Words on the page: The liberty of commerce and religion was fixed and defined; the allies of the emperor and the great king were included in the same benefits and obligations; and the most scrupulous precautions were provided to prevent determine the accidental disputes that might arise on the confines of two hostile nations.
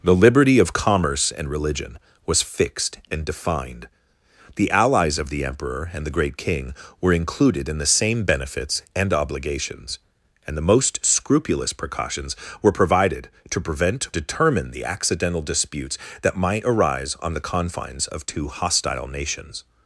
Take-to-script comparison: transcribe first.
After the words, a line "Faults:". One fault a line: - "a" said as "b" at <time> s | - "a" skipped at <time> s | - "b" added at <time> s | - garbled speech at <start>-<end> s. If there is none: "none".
The liberty of commerce and religion was fixed and defined; the allies of the emperor and the great king were included in the same benefits and obligations; and the most scrupulous precautions were provided to prevent determine the accidental disputes that might arise on the confines of two hostile nations.
Faults:
none